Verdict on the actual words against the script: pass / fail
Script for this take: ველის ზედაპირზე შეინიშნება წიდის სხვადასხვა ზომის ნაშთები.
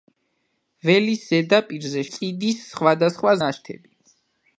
fail